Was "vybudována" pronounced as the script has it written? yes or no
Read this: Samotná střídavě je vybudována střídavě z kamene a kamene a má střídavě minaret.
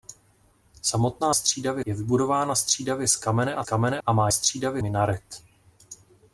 yes